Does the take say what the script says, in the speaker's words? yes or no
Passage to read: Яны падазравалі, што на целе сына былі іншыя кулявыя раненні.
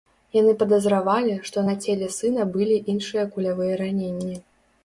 yes